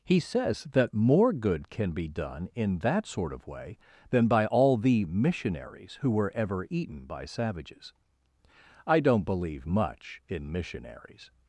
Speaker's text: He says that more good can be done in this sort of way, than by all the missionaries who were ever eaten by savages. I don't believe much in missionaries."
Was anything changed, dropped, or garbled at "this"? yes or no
yes